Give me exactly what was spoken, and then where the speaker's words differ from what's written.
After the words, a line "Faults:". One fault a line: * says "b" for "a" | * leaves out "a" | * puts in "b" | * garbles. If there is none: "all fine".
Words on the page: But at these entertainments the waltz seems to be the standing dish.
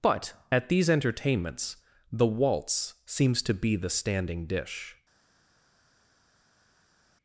But at these entertainments the waltz seems to be the standing dish.
Faults:
all fine